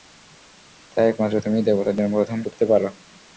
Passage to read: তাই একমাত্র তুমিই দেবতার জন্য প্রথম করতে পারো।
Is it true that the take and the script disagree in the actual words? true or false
false